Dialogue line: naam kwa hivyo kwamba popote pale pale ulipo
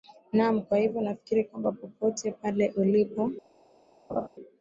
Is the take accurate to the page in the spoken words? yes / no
no